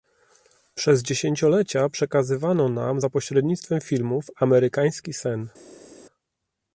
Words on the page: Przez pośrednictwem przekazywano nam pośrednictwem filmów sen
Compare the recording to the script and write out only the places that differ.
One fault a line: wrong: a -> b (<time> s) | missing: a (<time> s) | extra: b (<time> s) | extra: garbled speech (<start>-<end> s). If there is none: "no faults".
wrong: pośrednictwem -> dziesięciolecia (1.0 s)
extra: za (3.0 s)
extra: amerykański (4.4 s)